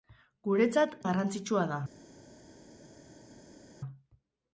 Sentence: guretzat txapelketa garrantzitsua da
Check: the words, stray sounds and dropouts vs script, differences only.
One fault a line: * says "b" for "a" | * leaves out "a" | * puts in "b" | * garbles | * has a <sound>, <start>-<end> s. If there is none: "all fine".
* leaves out "txapelketa"